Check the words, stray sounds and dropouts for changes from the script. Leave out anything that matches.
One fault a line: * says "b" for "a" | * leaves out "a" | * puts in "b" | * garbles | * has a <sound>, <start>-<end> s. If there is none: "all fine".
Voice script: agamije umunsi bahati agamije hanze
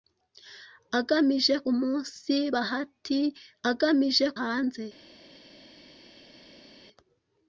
all fine